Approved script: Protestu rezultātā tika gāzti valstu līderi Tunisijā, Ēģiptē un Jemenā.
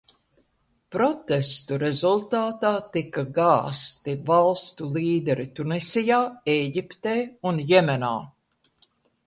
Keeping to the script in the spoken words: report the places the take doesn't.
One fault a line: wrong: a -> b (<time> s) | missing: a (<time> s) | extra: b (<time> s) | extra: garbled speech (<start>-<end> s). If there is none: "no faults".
no faults